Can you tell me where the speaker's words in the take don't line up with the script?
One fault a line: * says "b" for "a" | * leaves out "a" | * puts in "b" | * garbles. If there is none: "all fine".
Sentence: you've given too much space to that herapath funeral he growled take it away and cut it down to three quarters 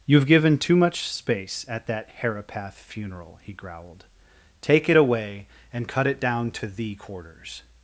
* says "at" for "to"
* says "thee" for "three"